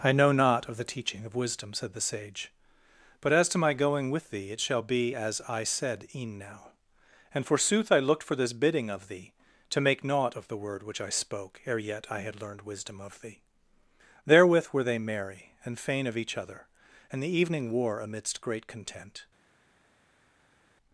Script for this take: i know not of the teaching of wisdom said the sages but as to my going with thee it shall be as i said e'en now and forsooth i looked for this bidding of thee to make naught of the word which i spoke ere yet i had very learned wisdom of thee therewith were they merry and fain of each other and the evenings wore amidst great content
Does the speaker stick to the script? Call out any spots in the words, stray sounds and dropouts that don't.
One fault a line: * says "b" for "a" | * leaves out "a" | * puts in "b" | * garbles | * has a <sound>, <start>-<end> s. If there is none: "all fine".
* says "sage" for "sages"
* leaves out "very"
* says "evening" for "evenings"